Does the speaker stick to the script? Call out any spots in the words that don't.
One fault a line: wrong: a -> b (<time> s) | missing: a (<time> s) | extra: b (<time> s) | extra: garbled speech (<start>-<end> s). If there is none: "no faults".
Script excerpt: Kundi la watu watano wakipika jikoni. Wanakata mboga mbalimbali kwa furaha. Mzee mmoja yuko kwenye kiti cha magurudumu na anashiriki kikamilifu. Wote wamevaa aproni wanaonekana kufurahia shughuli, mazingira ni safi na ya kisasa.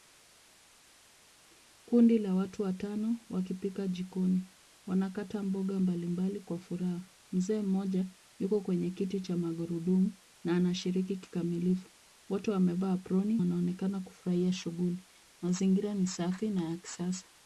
no faults